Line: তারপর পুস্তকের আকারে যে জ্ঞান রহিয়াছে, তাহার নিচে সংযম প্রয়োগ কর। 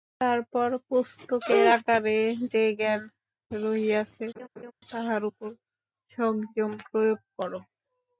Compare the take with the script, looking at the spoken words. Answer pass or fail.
fail